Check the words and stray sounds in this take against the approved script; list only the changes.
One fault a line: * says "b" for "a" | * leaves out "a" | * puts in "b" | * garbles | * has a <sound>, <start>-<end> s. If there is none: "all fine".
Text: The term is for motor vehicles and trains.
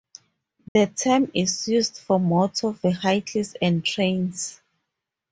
* has a dropout, 0.7-0.8 s
* puts in "used"